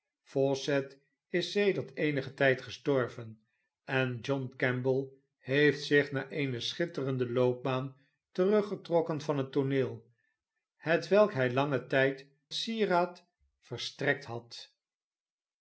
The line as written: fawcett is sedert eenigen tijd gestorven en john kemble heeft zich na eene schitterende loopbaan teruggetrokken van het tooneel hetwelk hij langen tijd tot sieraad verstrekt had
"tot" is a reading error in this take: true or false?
true